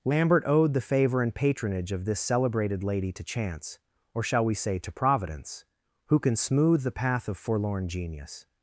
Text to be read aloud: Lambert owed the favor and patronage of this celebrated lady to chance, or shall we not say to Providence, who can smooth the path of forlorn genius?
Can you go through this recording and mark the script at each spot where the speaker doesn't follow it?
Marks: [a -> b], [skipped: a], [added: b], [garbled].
Lambert owed the favor and patronage of this celebrated lady to chance, or shall we [skipped: not] say to Providence, who can smooth the path of forlorn genius?